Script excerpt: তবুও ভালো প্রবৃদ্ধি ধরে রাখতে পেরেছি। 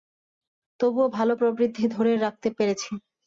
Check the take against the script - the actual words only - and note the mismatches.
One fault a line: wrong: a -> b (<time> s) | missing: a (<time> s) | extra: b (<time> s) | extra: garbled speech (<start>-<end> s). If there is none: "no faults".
no faults